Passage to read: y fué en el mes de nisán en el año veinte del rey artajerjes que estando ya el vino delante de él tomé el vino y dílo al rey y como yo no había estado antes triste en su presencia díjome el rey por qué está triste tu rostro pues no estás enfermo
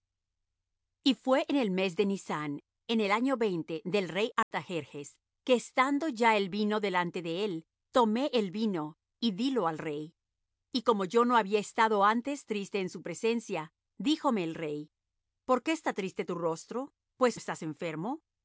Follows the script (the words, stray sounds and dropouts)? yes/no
no